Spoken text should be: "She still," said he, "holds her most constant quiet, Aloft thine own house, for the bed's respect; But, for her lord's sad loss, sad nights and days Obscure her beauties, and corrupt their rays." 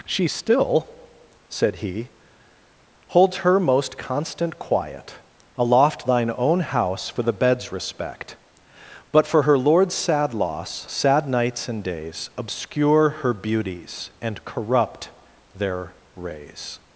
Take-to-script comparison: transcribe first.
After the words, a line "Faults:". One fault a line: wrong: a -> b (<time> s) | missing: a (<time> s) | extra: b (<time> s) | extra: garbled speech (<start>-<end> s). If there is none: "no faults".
"She still," said he, "holds her most constant quiet, Aloft thine own house, for the bed's respect; But, for her lord's sad loss, sad nights and days Obscure her beauties, and corrupt their rays."
Faults:
no faults